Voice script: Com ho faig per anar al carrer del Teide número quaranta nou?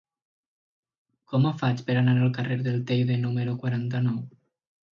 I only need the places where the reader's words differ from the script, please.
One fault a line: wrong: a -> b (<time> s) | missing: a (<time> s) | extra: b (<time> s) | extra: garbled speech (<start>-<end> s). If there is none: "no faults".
no faults